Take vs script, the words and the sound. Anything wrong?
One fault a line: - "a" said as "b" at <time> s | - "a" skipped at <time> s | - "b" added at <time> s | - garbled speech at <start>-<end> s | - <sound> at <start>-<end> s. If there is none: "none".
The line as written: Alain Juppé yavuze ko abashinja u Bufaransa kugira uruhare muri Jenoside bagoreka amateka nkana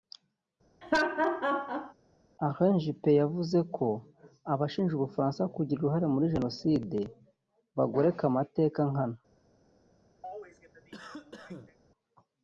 - laugh at 0.8-1.9 s
- cough at 10.2-11.8 s